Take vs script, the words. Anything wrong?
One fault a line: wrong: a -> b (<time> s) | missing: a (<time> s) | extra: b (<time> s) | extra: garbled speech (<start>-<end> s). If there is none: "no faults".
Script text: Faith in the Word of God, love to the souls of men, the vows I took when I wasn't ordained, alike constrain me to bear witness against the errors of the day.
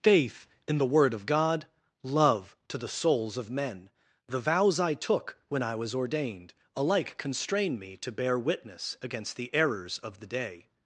wrong: wasn't -> was (5.8 s)